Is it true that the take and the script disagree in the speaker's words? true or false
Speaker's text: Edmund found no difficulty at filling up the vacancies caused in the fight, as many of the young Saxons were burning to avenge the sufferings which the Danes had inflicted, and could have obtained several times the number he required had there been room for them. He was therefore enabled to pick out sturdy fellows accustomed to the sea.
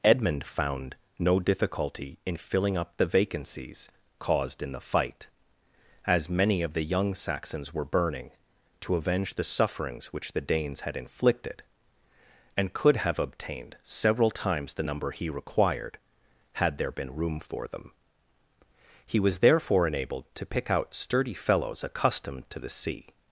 true